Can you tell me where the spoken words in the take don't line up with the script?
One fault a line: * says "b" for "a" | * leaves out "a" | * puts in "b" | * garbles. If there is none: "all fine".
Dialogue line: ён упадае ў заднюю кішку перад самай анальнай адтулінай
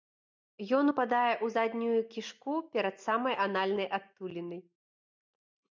all fine